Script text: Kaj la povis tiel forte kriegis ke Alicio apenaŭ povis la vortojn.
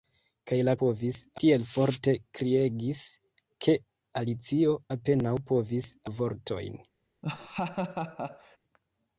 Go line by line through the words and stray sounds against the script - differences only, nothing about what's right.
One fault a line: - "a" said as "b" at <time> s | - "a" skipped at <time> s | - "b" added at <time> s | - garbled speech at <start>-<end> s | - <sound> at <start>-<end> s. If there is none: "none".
- laugh at 7.2-8.6 s